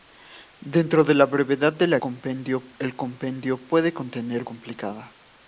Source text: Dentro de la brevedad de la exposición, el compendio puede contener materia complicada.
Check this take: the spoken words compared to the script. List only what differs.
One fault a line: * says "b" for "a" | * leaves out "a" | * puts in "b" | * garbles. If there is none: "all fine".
* says "compendio" for "exposición"
* leaves out "materia"